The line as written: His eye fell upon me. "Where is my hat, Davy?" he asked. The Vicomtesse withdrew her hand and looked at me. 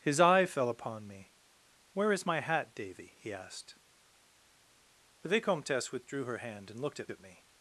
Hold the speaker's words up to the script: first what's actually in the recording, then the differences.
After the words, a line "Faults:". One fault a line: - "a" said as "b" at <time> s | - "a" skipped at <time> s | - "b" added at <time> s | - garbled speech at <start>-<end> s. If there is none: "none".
His eye fell upon me. "Where is my hat, Davy?" he asked. The Vicomtesse withdrew her hand and looked at at me.
Faults:
- "at" added at 7.1 s